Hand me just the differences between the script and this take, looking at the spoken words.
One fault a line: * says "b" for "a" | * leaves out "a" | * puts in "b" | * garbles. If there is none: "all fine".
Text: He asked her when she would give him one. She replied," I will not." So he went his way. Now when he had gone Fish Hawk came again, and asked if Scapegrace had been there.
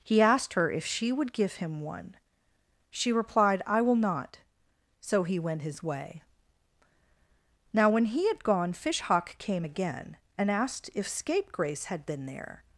* says "if" for "when"